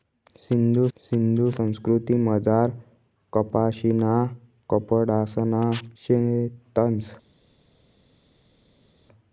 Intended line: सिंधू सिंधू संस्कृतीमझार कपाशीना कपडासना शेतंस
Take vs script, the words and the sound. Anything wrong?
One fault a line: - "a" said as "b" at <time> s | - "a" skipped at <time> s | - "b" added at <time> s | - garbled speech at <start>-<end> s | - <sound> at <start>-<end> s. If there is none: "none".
none